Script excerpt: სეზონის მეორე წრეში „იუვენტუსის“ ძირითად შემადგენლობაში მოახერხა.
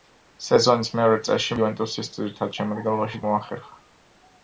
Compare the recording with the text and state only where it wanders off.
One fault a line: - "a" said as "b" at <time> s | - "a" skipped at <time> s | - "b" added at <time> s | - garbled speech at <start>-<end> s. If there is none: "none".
none